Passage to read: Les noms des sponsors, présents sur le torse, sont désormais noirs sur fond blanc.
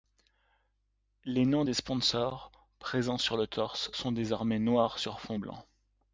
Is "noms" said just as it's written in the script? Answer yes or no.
yes